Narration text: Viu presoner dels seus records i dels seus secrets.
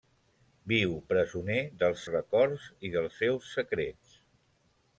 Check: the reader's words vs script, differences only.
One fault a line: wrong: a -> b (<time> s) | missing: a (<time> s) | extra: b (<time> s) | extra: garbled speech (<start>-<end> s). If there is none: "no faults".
missing: seus (2.1 s)